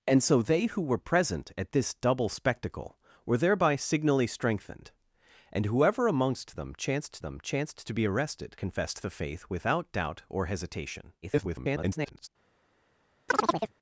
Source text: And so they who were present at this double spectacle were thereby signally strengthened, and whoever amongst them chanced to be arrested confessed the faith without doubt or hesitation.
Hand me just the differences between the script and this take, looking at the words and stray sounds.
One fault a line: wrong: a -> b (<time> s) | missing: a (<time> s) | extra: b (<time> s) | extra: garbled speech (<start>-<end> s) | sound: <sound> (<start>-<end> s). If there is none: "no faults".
extra: them chanced (7.2 s)
extra: garbled speech (11.2-12.3 s)
sound: chirp (13.3-13.7 s)